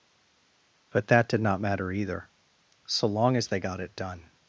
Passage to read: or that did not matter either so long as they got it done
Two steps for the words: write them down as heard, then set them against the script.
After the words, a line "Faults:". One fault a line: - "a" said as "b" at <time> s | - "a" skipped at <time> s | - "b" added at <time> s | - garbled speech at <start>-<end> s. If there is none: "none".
but that did not matter either so long as they got it done
Faults:
- "or" said as "but" at 0.9 s